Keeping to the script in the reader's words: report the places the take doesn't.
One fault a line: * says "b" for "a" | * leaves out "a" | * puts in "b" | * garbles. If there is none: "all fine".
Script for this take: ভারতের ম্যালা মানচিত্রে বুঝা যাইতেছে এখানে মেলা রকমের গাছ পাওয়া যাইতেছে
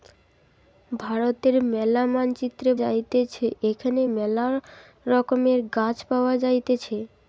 * leaves out "বুঝা"